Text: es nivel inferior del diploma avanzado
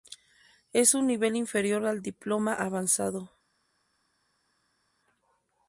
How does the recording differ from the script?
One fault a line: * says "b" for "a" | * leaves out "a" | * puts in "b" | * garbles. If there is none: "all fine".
* puts in "un"
* says "al" for "del"